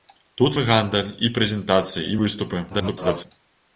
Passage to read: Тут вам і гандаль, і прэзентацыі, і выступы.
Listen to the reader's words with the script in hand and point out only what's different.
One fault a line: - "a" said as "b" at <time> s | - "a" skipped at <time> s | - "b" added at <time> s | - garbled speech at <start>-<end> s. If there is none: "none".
- "вам" skipped at 0.6 s
- garbled speech at 2.7-3.3 s